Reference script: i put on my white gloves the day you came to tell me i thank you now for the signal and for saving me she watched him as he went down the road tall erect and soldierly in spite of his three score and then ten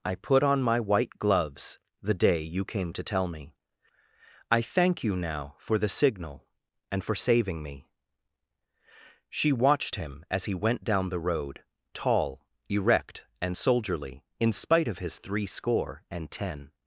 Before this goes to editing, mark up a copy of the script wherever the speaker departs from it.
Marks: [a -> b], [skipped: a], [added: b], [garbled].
i put on my white gloves the day you came to tell me i thank you now for the signal and for saving me she watched him as he went down the road tall erect and soldierly in spite of his three score and [skipped: then] ten